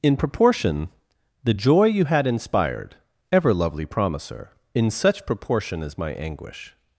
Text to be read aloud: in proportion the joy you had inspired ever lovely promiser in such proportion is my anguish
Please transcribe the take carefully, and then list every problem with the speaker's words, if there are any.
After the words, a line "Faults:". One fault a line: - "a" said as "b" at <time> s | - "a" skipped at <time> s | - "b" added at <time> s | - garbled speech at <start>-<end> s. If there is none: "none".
in proportion the joy you had inspired ever lovely promiser in such proportion is my anguish
Faults:
none